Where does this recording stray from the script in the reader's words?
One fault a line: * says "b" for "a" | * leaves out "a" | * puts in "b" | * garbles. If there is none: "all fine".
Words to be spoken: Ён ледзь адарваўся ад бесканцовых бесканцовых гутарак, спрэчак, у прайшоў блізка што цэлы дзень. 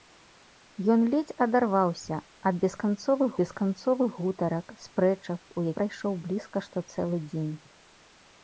all fine